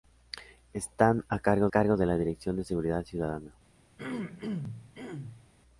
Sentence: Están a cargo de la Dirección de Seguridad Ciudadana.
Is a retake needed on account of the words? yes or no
yes